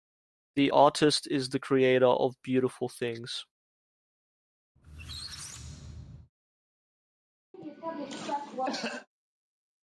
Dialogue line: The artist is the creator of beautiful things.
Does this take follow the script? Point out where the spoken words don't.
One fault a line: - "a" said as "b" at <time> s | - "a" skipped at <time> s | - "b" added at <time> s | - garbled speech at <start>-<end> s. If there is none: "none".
none